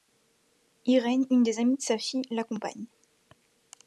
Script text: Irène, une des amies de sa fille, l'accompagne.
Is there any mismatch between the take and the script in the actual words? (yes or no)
no